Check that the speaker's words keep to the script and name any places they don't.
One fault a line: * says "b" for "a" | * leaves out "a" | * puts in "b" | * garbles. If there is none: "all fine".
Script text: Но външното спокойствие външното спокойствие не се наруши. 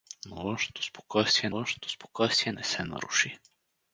all fine